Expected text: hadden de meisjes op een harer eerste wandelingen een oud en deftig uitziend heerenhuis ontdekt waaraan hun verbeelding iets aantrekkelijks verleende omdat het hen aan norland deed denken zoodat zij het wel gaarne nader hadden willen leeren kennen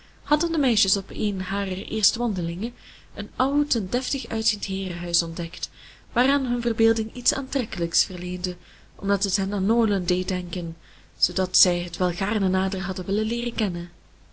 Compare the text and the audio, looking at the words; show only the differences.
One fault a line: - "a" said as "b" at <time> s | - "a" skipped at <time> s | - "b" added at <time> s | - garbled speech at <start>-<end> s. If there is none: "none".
none